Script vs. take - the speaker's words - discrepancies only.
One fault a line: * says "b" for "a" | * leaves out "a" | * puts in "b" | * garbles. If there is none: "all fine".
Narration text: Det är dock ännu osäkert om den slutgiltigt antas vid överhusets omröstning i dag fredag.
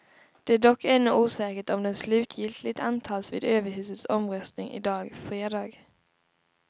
all fine